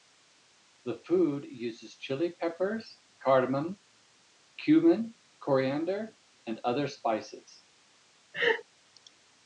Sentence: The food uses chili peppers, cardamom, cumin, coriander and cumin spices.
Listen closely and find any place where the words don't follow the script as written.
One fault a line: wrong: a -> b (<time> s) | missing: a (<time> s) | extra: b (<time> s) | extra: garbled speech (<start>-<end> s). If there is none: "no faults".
wrong: cumin -> other (6.6 s)